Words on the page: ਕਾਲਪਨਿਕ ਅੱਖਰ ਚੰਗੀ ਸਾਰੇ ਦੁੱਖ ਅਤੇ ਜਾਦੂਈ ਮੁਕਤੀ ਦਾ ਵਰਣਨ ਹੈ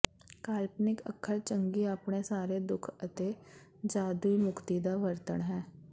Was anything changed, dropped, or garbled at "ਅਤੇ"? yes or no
no